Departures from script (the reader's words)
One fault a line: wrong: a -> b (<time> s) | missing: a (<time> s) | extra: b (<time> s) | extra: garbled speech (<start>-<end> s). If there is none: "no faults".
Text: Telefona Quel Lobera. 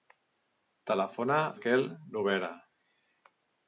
no faults